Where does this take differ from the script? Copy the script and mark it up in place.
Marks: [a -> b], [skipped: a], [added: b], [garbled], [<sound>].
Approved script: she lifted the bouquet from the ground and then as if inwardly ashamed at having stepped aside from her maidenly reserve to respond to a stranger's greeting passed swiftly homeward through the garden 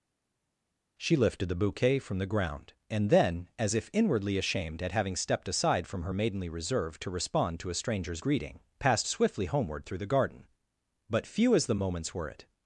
she lifted the bouquet from the ground and then as if inwardly ashamed at having stepped aside from her maidenly reserve to respond to a stranger's greeting passed swiftly homeward through the garden [added: but few as the moments were it]